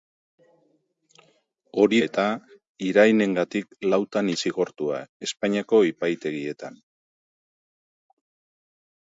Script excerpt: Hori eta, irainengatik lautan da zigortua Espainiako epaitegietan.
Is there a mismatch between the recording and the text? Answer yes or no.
no